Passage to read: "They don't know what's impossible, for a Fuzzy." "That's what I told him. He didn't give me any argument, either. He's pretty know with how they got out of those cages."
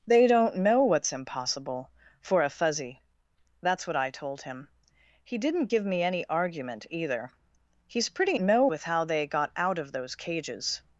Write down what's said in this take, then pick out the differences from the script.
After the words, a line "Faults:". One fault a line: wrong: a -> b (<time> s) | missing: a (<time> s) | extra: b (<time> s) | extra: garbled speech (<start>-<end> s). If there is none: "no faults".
"They don't know what's impossible, for a Fuzzy." "That's what I told him. He didn't give me any argument, either. He's pretty know with how they got out of those cages."
Faults:
no faults